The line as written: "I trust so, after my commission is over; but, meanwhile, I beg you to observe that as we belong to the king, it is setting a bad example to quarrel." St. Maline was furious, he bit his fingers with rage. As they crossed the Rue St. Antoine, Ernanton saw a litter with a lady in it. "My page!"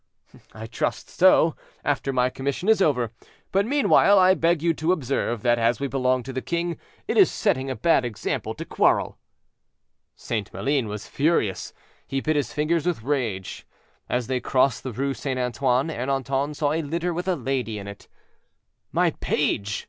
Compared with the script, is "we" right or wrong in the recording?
right